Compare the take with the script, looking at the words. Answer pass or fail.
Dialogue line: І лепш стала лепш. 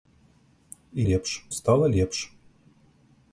pass